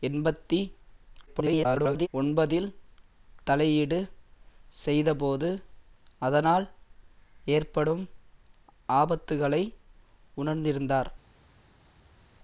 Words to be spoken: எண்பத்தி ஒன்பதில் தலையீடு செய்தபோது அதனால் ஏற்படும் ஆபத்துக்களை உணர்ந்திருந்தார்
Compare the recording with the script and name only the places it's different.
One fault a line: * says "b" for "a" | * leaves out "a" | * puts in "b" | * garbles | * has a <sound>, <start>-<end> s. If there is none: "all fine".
* garbles